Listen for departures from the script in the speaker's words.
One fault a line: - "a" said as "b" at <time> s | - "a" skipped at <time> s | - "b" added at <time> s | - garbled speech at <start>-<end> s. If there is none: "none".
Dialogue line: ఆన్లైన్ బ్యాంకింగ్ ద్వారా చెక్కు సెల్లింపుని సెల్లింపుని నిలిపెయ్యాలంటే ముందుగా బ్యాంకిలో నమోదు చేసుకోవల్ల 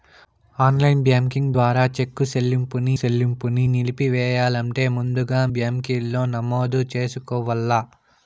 none